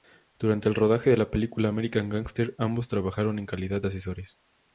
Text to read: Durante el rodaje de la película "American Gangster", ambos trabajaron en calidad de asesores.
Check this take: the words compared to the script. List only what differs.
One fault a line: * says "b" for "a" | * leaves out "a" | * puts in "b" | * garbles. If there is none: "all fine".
all fine